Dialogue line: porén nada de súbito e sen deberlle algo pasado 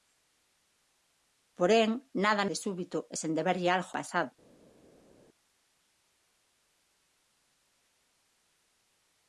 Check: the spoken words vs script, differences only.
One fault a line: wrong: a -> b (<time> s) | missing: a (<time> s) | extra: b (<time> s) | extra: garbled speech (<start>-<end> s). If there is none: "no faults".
no faults